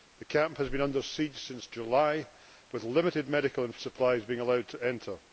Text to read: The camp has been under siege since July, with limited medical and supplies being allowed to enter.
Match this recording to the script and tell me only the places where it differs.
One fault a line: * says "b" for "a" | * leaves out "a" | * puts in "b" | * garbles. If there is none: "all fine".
all fine